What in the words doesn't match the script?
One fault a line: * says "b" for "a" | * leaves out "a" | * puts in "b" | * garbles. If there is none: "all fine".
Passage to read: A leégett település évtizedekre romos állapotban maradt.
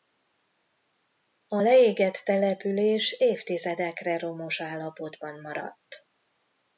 all fine